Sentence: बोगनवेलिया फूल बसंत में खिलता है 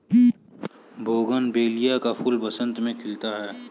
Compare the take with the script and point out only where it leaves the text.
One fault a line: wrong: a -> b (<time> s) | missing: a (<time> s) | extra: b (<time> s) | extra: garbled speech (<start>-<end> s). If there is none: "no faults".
extra: का (2.0 s)